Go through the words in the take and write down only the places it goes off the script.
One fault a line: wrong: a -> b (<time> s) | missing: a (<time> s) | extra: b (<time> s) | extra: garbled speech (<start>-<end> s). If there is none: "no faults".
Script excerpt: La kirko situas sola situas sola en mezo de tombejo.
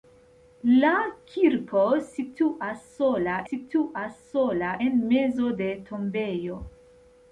no faults